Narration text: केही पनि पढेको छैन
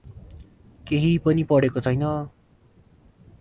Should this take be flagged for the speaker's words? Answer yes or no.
no